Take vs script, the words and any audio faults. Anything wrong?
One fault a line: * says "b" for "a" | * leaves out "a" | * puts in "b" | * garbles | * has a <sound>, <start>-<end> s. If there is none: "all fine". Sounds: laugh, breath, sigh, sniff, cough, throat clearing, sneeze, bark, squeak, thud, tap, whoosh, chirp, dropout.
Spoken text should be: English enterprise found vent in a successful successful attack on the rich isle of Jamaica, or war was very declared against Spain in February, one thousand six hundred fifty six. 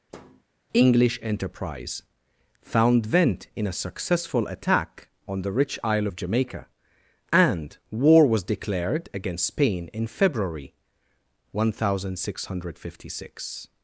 * has a thud, 0.1-0.4 s
* leaves out "successful"
* says "and" for "or"
* leaves out "very"